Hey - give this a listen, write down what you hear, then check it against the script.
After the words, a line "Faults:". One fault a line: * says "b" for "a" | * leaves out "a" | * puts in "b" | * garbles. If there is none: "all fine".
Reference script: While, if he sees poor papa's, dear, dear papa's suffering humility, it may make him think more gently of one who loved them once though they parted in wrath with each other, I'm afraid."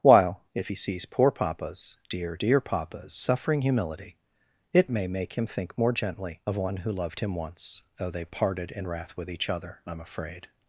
While, if he sees poor papa's, dear, dear papa's suffering humility, it may make him think more gently of one who loved him once though they parted in wrath with each other, I'm afraid."
Faults:
* says "him" for "them"